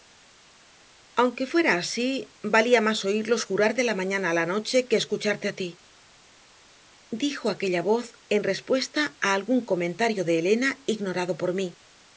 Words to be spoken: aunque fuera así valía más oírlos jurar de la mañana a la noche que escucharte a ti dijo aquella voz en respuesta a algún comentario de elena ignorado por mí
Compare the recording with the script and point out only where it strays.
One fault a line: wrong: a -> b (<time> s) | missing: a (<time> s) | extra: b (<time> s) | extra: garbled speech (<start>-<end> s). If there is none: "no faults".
no faults